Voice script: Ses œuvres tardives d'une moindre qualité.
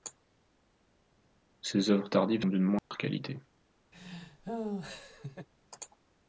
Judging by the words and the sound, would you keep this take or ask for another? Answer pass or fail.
fail